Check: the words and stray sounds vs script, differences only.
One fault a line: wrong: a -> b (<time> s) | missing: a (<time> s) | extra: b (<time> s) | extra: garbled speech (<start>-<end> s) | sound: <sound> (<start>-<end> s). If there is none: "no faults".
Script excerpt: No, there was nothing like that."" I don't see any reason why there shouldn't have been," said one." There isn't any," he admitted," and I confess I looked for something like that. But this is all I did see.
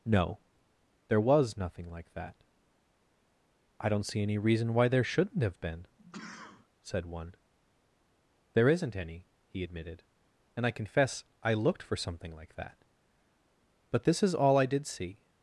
sound: sneeze (6.0-6.7 s)